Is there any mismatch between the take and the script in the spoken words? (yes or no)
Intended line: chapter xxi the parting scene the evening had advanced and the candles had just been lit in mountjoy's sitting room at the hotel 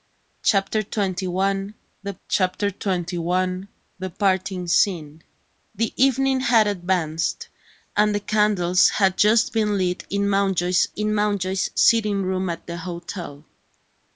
yes